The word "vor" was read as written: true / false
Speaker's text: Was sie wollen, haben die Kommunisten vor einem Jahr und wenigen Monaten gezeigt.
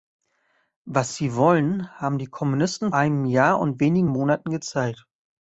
false